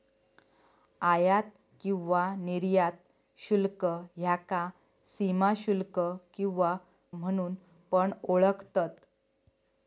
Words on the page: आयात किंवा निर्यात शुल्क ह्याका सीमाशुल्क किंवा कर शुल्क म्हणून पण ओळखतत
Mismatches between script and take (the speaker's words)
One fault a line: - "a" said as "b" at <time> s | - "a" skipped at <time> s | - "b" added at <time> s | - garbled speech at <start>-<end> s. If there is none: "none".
- "कर शुल्क" skipped at 6.8 s